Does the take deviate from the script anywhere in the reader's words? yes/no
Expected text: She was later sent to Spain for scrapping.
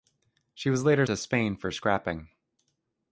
yes